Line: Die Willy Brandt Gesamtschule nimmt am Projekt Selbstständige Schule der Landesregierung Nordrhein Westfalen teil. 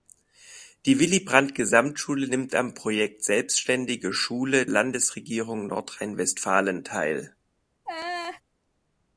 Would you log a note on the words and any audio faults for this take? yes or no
yes